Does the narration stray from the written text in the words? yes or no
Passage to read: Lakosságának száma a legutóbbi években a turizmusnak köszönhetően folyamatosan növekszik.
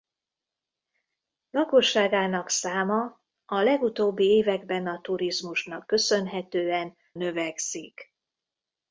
yes